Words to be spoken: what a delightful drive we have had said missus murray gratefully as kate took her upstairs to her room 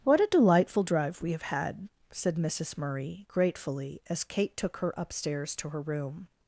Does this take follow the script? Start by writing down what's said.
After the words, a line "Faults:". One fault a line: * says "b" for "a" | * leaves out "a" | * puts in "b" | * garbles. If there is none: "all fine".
what a delightful drive we have had said missus murray gratefully as kate took her upstairs to her room
Faults:
all fine